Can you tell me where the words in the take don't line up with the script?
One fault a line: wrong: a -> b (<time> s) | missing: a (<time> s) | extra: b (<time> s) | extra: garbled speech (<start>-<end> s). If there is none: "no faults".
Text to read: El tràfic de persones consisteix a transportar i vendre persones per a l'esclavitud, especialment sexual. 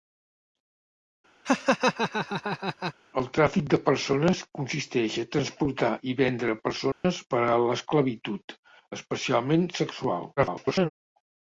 extra: garbled speech (10.4-10.9 s)